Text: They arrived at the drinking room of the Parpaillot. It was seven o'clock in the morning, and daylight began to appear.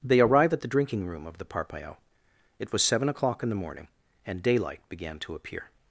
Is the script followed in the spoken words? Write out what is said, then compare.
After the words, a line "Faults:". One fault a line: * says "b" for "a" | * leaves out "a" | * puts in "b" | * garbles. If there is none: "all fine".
They arrive at the drinking room of the Parpaillot. It was seven o'clock in the morning, and daylight began to appear.
Faults:
* says "arrive" for "arrived"